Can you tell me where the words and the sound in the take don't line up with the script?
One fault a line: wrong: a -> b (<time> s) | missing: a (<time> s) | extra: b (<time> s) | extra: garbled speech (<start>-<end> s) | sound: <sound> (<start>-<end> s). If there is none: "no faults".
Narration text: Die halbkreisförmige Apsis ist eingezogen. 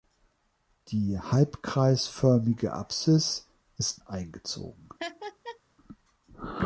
sound: laugh (5.0-5.6 s)